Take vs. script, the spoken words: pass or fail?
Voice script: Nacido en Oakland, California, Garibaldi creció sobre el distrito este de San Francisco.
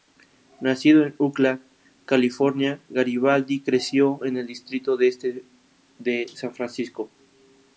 fail